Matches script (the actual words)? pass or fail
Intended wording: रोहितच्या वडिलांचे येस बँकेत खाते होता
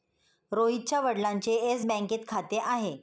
fail